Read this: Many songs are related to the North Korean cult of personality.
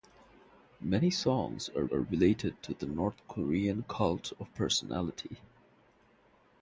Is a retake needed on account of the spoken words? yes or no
yes